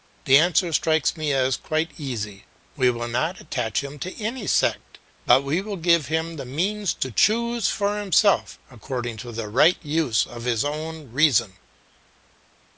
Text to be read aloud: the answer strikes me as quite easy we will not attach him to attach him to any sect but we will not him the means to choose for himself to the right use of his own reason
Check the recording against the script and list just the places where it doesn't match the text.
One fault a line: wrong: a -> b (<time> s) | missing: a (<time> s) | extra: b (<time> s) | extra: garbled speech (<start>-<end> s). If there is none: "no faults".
missing: attach him to (4.2 s)
wrong: not -> give (5.8 s)
extra: according (8.7 s)